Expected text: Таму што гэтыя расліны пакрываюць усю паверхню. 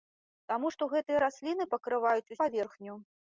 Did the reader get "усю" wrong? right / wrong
wrong